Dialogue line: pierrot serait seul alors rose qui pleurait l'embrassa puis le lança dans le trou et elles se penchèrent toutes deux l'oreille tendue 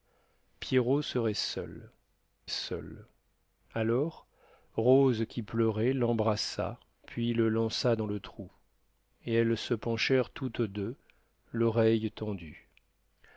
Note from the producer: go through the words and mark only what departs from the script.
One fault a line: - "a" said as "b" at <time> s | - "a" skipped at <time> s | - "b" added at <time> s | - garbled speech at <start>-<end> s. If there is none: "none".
- "seul" added at 2.5 s